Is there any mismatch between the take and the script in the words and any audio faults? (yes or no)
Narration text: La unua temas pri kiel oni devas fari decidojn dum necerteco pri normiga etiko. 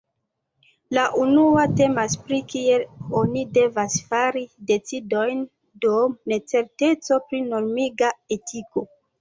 no